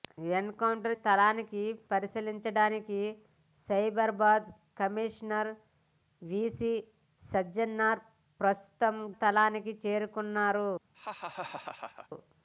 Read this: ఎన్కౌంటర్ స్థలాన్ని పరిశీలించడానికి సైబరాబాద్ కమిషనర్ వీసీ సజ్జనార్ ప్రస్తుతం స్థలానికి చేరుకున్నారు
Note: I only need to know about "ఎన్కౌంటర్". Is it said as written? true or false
true